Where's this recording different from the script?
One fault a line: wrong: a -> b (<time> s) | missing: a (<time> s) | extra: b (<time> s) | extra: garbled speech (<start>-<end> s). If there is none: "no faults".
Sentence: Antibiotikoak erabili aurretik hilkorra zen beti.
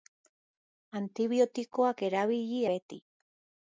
missing: aurretik hilkorra zen (2.6 s)